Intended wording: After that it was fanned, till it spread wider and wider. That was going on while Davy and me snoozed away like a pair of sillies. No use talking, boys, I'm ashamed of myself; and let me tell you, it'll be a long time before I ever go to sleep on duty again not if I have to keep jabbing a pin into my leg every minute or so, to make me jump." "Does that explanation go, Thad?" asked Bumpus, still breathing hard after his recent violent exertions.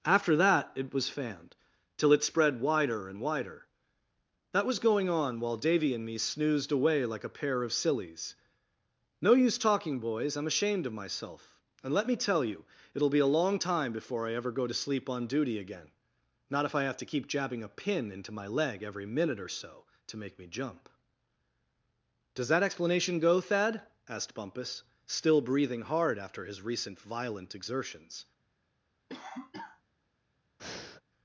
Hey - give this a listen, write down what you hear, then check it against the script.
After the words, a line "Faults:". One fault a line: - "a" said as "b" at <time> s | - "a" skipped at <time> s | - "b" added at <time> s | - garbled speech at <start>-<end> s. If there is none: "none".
After that it was fanned, till it spread wider and wider. That was going on while Davy and me snoozed away like a pair of sillies. No use talking, boys, I'm ashamed of myself; and let me tell you, it'll be a long time before I ever go to sleep on duty again not if I have to keep jabbing a pin into my leg every minute or so, to make me jump." "Does that explanation go, Thad?" asked Bumpus, still breathing hard after his recent violent exertions.
Faults:
none